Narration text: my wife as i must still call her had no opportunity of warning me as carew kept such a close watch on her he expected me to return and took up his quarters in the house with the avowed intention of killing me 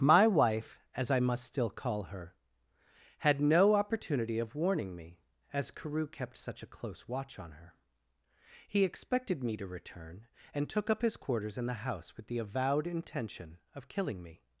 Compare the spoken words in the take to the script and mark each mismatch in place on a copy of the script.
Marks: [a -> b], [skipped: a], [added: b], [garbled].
my wife as i must still call her had no opportunity of warning me as carew kept such a close watch on her he expected me to return and took up his quarters in the house with the avowed intention of killing me